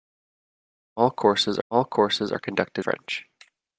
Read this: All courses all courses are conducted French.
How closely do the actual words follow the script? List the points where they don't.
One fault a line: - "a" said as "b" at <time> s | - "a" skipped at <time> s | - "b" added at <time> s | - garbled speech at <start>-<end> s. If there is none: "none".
none